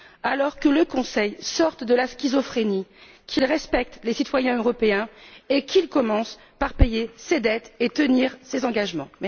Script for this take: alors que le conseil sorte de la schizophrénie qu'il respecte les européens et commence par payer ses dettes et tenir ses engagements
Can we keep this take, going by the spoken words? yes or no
no